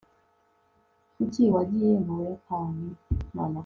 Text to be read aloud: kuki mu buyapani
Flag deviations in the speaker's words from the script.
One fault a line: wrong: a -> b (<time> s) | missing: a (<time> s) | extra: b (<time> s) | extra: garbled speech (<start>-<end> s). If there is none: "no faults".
extra: wagiye (1.5 s)